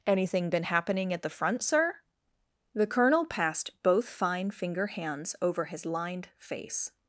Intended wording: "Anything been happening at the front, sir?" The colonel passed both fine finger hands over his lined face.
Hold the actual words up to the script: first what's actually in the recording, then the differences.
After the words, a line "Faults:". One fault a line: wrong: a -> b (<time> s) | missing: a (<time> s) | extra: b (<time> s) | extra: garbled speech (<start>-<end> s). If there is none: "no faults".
"Anything been happening at the front, sir?" The colonel passed both fine finger hands over his lined face.
Faults:
no faults